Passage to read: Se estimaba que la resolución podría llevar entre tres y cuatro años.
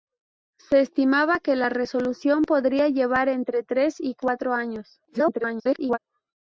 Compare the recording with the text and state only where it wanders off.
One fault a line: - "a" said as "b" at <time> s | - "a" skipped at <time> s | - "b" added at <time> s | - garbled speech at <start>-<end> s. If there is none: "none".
- garbled speech at 5.1-6.0 s